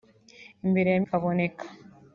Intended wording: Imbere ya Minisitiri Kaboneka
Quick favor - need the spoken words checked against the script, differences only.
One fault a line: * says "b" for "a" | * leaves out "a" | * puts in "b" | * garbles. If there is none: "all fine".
* leaves out "Minisitiri"